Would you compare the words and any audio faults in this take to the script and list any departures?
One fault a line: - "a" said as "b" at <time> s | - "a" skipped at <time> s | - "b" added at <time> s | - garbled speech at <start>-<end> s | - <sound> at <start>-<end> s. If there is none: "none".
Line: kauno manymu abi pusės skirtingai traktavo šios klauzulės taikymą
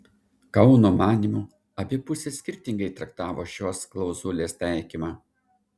none